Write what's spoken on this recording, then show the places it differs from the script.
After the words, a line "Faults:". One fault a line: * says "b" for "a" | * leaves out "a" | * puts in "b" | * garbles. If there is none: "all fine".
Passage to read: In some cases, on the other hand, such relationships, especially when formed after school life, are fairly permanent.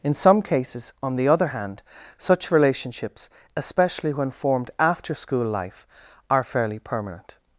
In some cases, on the other hand, such relationships, especially when formed after school life, are fairly permanent.
Faults:
all fine